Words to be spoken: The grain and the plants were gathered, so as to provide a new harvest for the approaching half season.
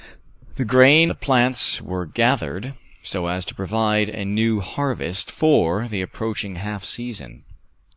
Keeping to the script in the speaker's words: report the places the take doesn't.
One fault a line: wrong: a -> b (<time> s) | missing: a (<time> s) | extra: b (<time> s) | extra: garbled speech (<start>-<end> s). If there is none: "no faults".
missing: and (1.1 s)